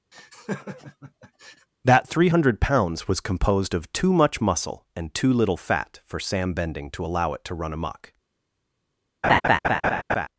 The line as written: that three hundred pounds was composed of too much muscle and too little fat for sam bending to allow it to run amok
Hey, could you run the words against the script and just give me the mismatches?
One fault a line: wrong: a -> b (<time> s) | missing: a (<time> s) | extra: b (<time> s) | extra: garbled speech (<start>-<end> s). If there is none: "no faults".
no faults